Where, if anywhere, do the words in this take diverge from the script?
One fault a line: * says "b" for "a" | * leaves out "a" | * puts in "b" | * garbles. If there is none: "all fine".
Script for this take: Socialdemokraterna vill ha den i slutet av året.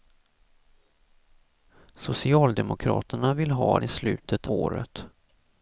* leaves out "den"
* leaves out "av"